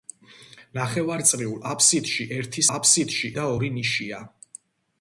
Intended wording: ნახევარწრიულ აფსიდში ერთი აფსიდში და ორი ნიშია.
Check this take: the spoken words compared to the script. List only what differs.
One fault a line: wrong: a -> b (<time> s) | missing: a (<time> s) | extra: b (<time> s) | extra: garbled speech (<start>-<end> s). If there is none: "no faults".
no faults